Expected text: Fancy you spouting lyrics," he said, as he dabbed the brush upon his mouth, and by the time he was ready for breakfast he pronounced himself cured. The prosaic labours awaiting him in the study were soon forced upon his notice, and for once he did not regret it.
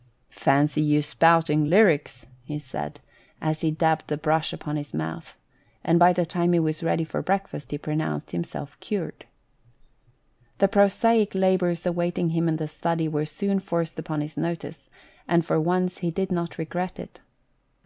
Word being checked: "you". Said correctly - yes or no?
yes